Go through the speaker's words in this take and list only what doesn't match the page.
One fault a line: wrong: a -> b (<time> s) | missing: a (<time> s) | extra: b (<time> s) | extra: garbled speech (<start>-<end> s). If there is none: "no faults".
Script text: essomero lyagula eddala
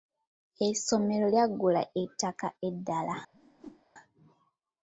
extra: ettaka (2.0 s)